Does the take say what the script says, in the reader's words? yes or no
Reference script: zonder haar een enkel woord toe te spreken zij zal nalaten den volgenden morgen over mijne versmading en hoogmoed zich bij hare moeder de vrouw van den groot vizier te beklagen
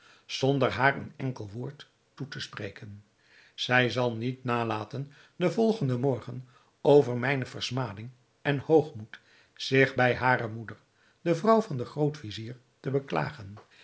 no